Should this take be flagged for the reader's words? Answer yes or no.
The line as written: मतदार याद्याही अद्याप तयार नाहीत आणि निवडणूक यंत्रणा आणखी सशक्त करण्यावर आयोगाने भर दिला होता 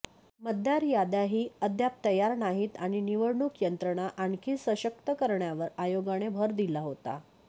no